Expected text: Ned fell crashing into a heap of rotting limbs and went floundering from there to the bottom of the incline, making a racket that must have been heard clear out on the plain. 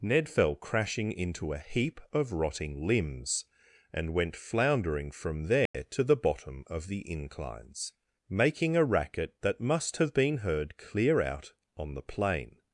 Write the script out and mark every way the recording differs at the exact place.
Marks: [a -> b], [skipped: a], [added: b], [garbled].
Ned fell crashing into a heap of rotting limbs and went floundering from there to the bottom of the [incline, -> inclines] making a racket that must have been heard clear out on the plain.